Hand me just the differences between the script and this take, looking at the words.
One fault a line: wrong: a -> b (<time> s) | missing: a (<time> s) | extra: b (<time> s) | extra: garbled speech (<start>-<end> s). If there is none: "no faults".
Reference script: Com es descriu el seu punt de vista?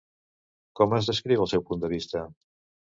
no faults